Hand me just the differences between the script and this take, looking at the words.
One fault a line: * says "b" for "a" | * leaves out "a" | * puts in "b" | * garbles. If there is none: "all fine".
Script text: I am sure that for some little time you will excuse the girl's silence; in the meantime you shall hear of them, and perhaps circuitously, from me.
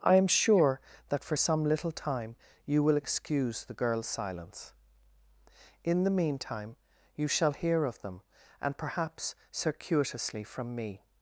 all fine